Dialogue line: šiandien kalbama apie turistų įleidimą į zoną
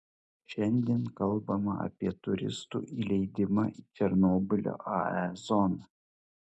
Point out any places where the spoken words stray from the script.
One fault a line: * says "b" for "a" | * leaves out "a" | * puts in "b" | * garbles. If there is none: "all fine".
* puts in "černobylio ae"